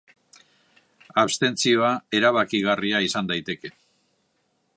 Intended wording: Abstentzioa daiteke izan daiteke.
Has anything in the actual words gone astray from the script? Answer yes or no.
yes